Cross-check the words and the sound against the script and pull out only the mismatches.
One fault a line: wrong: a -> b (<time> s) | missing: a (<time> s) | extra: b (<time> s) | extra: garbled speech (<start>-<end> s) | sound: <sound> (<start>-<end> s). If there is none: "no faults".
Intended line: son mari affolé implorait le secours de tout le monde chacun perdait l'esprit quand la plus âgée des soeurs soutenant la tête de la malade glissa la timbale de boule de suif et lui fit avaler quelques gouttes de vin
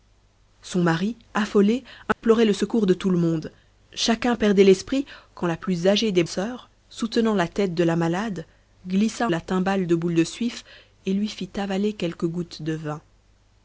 sound: dropout (2.1-2.2 s)